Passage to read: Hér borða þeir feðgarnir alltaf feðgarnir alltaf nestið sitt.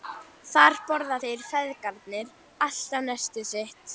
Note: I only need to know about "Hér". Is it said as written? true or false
false